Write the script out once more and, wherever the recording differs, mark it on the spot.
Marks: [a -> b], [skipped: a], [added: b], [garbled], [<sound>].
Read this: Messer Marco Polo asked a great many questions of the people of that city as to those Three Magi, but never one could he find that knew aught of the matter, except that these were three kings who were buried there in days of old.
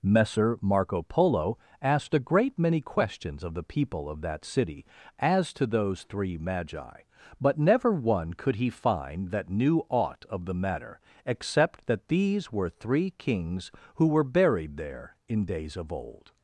Messer Marco Polo asked a great many questions of the people of that city as to those Three Magi, but never one could he find that knew aught of the matter, except that these were three kings who were buried there in days of old.